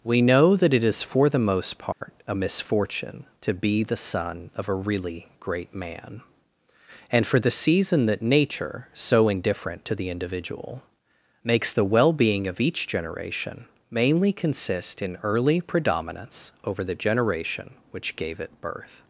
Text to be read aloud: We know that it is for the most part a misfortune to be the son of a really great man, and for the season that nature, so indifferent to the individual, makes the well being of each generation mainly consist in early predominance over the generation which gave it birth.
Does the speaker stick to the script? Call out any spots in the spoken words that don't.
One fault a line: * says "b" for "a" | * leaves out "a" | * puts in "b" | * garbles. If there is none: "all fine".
all fine